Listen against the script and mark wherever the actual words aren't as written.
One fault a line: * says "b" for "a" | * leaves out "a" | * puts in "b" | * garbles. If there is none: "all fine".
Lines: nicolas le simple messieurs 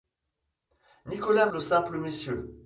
all fine